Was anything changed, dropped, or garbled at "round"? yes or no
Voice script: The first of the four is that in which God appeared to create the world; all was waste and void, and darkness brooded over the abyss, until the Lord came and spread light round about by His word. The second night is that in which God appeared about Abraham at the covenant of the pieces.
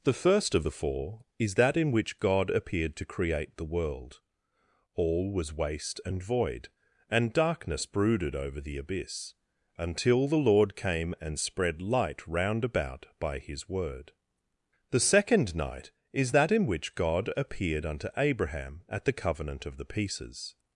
no